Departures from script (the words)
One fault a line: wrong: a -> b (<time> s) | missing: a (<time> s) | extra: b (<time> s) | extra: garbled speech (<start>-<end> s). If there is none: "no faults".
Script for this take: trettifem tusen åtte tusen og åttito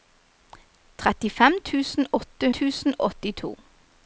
no faults